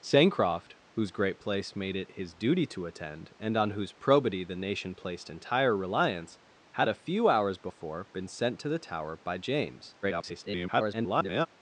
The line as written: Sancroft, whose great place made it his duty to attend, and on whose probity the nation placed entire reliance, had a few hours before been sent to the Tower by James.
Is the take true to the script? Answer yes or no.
no